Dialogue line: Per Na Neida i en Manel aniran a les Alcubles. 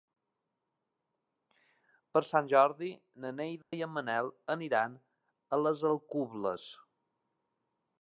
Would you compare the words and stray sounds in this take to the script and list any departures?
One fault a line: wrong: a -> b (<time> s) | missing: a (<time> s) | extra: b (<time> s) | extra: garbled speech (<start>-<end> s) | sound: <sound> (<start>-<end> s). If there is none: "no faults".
extra: Sant Jordi (2.3 s)
sound: dropout (3.6-3.7 s)